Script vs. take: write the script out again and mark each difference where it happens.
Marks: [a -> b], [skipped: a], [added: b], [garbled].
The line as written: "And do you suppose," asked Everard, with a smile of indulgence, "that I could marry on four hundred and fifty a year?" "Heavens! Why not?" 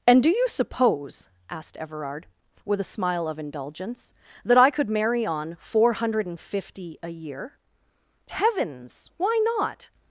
"And do you suppose," asked Everard, with a smile of indulgence, "that I could marry on four hundred and fifty a year?" "Heavens! Why not?"